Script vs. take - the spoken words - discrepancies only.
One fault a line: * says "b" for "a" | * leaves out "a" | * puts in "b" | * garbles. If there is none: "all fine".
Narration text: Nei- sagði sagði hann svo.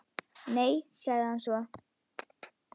* leaves out "sagði"